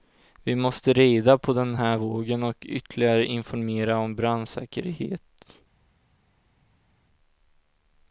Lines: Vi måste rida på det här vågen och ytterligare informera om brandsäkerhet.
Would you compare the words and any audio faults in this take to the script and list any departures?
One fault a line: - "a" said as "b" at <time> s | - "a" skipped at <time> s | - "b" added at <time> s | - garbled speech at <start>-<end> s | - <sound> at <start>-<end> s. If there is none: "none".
- "det" said as "den" at 1.5 s